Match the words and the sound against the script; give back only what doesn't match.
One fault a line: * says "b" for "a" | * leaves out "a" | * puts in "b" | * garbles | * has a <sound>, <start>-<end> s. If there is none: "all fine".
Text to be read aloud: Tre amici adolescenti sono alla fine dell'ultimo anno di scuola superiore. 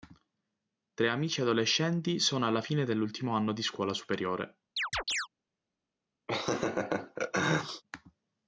* has a chirp, 4.8-5.3 s
* has a laugh, 6.3-7.8 s